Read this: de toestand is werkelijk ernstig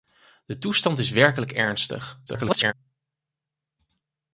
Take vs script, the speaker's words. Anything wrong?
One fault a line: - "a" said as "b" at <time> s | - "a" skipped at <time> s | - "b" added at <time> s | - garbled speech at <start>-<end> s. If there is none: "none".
- garbled speech at 2.3-2.7 s